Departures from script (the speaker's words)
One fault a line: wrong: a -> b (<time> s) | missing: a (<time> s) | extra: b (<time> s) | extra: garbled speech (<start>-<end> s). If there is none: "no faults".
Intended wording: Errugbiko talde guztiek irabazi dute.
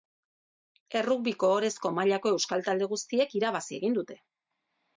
extra: ohorezko mailako euskal (1.6 s)
extra: egin (3.8 s)